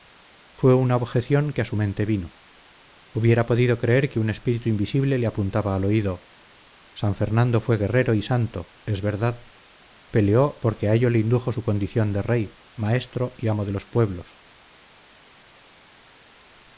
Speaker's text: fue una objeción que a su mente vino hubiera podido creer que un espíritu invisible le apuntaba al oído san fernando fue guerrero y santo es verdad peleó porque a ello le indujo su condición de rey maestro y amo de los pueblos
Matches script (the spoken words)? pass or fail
pass